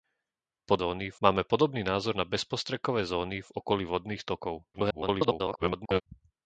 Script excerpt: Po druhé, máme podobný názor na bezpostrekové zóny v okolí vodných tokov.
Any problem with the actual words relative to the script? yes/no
yes